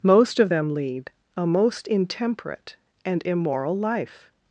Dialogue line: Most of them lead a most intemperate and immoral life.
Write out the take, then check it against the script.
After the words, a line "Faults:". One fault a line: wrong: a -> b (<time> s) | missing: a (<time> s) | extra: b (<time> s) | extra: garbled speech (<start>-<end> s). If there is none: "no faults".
Most of them lead a most intemperate and immoral life.
Faults:
no faults